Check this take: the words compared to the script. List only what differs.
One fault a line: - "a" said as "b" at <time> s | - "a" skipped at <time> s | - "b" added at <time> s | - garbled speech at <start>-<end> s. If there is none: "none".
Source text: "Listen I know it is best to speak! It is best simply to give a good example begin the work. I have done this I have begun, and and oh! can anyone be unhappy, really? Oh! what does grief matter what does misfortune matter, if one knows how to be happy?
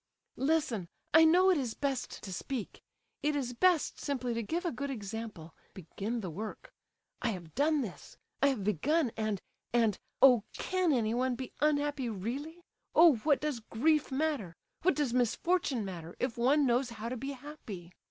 none